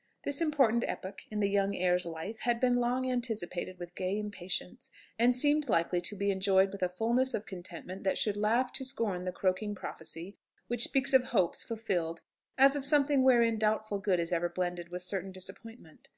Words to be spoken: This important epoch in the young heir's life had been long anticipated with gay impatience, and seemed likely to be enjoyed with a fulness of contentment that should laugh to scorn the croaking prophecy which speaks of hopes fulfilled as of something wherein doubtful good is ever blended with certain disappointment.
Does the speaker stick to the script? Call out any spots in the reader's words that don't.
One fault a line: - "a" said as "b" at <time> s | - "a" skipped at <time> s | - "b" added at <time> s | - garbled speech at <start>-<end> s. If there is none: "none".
none